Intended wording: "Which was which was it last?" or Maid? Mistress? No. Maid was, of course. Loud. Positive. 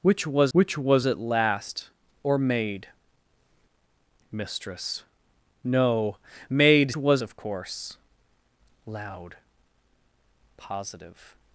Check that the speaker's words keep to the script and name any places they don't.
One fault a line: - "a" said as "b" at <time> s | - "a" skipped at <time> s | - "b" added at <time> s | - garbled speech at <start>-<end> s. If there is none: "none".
none